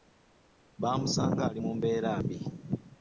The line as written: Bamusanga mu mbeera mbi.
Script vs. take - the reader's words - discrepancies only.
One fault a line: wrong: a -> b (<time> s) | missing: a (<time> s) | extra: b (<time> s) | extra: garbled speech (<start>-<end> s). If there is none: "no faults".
extra: ali (1.5 s)